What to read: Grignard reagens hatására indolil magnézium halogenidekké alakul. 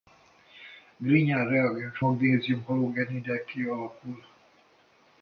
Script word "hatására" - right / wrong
wrong